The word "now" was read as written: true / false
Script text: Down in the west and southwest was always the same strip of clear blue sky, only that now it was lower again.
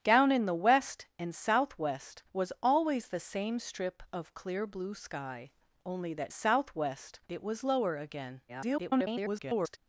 false